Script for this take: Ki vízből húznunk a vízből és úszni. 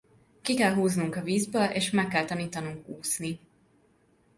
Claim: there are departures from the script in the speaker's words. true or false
true